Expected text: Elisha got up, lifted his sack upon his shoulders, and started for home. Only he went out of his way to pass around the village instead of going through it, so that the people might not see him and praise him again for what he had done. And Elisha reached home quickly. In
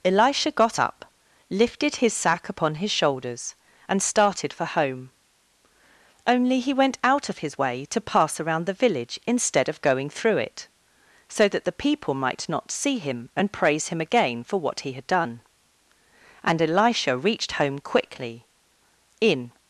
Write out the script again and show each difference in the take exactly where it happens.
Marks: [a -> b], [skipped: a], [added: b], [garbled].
Elisha got up, lifted his sack upon his shoulders, and started for home. Only he went out of his way to pass around the village instead of going through it, so that the people might not see him and praise him again for what he had done. And Elisha reached home quickly. In